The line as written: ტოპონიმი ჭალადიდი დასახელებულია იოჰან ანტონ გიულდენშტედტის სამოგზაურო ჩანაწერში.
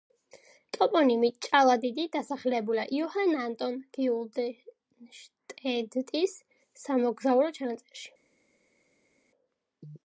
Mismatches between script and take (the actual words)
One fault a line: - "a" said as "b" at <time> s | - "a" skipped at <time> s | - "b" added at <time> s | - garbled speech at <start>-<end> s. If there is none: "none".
none